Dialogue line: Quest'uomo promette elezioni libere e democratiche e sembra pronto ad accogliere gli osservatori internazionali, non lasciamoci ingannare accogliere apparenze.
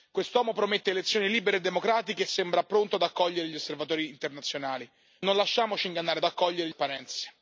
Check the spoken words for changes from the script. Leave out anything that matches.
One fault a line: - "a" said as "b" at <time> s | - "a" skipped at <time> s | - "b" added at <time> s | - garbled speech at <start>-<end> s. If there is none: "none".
none